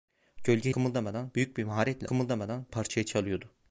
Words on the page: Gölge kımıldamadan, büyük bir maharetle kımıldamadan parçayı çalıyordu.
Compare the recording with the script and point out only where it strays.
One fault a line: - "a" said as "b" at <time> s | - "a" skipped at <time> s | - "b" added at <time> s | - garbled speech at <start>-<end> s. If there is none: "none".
none